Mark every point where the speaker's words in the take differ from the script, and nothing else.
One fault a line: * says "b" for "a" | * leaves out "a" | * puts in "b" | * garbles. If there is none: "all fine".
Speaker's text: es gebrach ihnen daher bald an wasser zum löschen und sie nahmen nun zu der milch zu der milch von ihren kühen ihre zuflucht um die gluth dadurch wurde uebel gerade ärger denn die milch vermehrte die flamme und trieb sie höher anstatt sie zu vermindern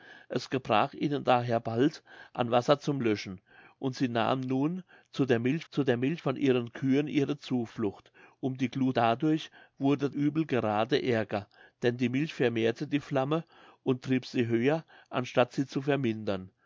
all fine